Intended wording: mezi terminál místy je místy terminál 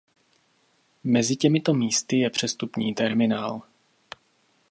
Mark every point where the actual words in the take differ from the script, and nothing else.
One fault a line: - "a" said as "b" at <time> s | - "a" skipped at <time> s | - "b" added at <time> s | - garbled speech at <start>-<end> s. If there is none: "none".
- "terminál" said as "těmito" at 1.4 s
- "místy" said as "přestupní" at 2.3 s